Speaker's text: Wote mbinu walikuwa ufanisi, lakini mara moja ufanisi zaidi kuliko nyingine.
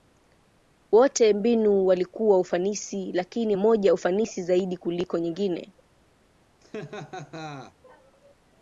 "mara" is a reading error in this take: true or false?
true